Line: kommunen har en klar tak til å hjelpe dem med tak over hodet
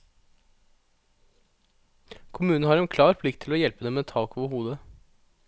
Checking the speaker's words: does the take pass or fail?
fail